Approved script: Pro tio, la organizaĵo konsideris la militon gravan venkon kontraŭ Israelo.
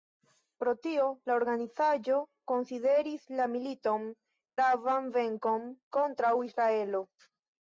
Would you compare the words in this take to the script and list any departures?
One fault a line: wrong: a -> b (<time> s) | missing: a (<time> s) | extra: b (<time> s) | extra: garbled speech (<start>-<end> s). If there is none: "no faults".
no faults